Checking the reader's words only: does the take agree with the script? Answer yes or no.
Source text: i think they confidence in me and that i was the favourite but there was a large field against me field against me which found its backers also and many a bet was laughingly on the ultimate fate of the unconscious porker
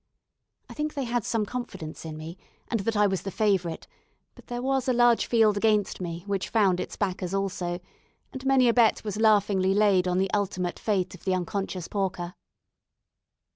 no